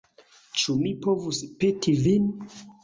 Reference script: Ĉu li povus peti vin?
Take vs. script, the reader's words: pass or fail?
fail